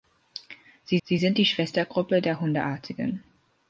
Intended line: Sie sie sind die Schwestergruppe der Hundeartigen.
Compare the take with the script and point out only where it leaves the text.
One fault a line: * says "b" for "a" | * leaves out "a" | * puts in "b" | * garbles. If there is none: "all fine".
all fine